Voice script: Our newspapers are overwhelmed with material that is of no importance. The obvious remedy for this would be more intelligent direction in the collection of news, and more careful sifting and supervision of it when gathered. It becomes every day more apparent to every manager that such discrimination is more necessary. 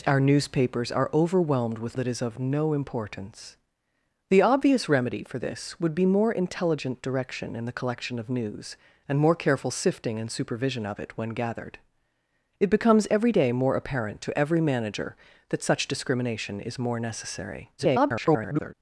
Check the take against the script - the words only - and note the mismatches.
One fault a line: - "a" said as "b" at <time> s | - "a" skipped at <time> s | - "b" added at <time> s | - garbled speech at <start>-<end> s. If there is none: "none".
- "material" skipped at 2.0 s
- garbled speech at 17.8-18.7 s